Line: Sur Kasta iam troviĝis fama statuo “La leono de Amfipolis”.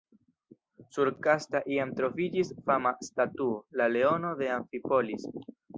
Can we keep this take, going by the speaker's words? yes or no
yes